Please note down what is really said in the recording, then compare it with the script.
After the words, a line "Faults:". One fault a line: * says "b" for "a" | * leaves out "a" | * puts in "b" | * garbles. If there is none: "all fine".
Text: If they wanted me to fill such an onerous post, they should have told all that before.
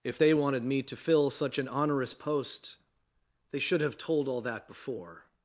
If they wanted me to fill such an onerous post, they should have told all that before.
Faults:
all fine